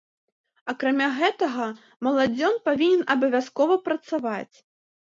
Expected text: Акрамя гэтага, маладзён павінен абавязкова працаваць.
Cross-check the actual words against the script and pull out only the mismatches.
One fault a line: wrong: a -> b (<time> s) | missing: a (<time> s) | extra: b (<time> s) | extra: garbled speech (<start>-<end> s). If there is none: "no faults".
no faults